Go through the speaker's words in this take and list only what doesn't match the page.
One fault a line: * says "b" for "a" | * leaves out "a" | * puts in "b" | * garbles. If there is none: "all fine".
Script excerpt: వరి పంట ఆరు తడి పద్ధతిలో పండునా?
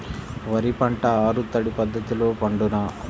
all fine